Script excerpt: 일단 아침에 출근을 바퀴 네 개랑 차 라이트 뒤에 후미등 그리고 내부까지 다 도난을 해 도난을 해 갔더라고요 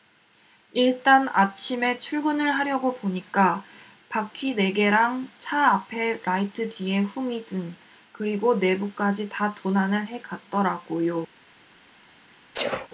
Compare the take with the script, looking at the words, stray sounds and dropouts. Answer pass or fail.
fail